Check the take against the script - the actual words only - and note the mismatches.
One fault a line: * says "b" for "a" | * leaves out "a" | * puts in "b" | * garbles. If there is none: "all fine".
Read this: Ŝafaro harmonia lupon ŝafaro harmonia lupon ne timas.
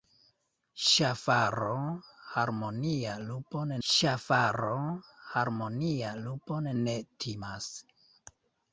all fine